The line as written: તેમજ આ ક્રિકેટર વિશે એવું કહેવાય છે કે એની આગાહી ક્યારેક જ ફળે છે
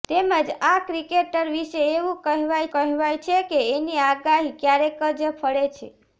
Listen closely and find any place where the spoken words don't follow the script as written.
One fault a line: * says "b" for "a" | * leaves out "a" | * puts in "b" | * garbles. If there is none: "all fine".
* puts in "કહેવાય"